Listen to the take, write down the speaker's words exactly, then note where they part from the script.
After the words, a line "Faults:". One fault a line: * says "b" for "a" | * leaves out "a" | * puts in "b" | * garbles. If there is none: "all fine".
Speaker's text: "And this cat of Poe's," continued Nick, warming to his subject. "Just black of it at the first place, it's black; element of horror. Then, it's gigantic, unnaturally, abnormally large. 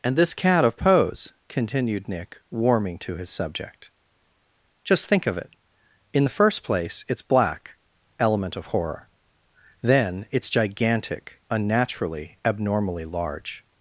"And this cat of Poe's," continued Nick, warming to his subject. "Just think of it in the first place, it's black; element of horror. Then, it's gigantic, unnaturally, abnormally large.
Faults:
* says "think" for "black"
* says "in" for "at"